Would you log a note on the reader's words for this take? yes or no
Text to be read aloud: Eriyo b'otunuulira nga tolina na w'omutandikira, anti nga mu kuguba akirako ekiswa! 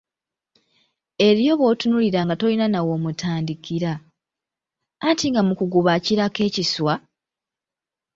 no